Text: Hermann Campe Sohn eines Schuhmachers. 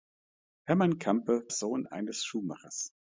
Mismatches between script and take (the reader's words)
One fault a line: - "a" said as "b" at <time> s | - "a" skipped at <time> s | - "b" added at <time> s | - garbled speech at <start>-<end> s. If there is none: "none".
none